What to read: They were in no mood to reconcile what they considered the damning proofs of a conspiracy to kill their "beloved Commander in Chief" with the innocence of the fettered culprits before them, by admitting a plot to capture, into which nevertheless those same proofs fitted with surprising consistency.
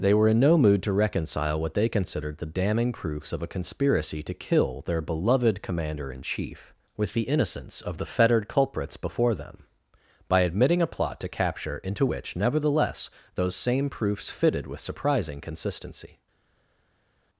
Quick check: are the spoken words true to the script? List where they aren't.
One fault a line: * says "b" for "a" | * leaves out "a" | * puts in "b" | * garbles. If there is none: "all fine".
all fine